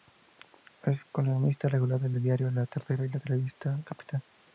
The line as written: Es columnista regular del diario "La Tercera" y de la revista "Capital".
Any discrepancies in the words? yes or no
no